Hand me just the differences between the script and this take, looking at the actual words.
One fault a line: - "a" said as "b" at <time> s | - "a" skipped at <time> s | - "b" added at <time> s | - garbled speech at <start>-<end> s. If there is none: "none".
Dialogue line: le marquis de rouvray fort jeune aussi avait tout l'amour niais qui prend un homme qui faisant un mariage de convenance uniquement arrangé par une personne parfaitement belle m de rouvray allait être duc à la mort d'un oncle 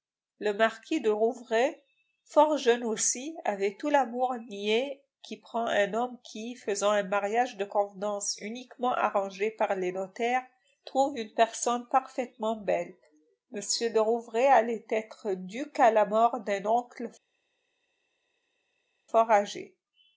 - "les notaires trouve" added at 9.8 s